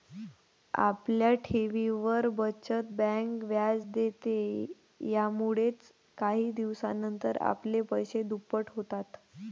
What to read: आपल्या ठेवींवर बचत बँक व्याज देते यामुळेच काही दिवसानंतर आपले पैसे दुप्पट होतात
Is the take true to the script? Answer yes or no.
yes